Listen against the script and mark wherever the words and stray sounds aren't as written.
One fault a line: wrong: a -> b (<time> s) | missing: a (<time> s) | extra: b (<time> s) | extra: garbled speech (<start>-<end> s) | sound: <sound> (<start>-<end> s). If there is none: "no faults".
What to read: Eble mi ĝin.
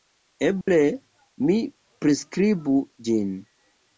sound: dropout (0.6-0.7 s)
extra: priskribu (2.0 s)